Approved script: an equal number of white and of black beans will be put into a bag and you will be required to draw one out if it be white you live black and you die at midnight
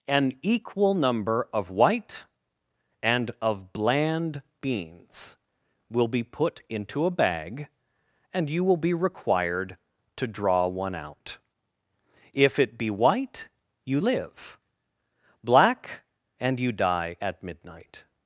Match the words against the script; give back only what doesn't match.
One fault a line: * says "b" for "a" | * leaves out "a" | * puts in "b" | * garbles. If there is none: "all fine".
* says "bland" for "black"